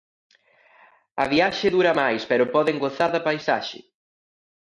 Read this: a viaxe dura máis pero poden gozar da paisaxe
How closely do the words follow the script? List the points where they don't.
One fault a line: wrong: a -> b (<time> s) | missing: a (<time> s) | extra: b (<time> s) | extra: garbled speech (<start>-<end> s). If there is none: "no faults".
no faults